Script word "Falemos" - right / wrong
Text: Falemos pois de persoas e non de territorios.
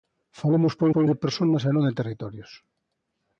right